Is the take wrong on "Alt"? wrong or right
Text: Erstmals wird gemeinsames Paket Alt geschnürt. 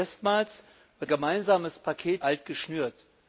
right